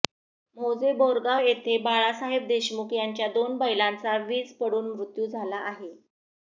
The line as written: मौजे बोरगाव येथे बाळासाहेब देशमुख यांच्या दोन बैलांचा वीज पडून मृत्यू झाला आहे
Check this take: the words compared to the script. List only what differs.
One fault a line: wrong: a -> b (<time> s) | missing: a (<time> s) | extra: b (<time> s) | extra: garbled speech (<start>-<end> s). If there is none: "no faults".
no faults